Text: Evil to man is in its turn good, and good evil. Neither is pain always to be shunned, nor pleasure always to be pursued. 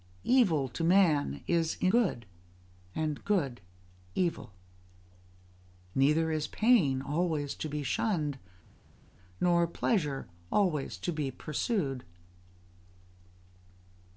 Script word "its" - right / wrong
wrong